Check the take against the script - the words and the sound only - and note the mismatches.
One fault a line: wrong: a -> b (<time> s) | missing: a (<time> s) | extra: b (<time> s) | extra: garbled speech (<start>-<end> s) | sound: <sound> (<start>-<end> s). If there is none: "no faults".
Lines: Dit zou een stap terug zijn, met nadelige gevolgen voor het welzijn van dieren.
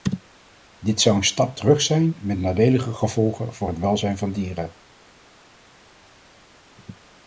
no faults